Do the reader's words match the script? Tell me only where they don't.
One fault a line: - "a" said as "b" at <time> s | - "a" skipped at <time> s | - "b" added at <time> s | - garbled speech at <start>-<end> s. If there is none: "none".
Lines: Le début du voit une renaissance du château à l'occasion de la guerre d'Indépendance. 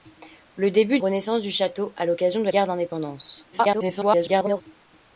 - "du voit une" skipped at 1.0 s
- "la" skipped at 2.5 s
- garbled speech at 3.5-4.6 s